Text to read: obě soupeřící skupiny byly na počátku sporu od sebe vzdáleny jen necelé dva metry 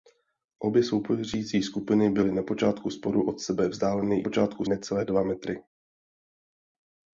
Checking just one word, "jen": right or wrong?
wrong